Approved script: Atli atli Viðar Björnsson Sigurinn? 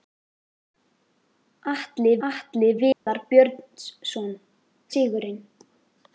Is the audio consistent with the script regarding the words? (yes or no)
yes